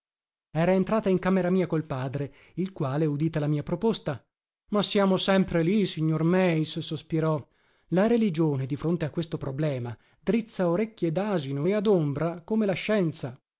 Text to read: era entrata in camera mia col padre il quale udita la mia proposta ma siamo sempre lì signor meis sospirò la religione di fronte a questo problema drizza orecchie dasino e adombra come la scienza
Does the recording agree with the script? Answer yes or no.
yes